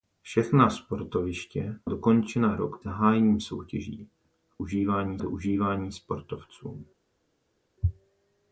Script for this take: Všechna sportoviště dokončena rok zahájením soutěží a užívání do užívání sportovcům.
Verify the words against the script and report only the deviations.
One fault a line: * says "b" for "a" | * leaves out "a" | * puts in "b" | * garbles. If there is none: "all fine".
all fine